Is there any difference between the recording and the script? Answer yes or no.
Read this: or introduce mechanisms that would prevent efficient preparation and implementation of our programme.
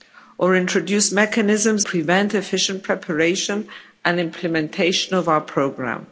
yes